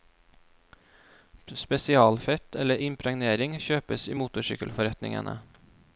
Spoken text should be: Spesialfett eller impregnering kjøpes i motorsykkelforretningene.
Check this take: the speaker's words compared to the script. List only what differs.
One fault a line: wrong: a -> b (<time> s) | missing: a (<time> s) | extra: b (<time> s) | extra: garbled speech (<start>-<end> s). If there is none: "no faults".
no faults